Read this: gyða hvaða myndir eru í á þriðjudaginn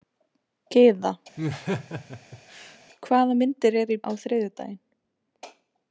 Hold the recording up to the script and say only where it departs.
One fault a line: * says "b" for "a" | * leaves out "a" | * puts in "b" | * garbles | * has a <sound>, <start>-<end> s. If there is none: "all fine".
* has a laugh, 1.4-2.8 s